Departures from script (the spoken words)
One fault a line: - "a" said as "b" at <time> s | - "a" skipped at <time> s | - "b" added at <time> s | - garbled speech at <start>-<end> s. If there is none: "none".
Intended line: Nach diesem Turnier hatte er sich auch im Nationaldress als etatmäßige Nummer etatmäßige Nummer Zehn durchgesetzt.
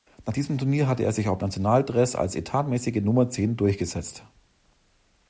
- "etatmäßige Nummer" skipped at 3.3 s